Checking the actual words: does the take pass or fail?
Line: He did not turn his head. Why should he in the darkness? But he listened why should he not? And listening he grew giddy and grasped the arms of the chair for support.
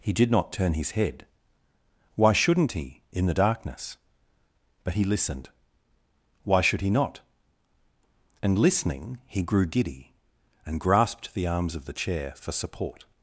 fail